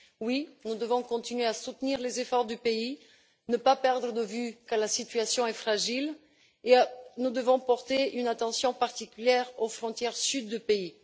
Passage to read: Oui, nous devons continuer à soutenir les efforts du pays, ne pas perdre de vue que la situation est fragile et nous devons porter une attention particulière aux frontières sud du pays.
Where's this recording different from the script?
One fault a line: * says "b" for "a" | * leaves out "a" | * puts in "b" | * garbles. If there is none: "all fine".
all fine